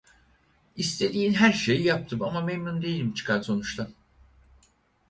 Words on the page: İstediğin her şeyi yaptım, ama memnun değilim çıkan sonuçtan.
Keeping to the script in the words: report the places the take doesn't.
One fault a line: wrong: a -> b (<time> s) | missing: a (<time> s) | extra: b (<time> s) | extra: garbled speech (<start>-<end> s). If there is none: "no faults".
no faults